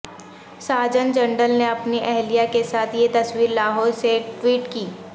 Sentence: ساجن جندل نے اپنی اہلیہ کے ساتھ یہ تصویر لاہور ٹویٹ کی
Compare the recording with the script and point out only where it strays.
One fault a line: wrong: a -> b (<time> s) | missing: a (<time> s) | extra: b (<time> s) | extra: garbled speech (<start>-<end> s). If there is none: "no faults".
extra: سے (4.0 s)